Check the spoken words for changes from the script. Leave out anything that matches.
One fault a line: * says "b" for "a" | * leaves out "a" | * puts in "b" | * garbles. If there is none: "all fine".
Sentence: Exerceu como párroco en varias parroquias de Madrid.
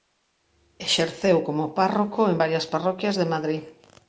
all fine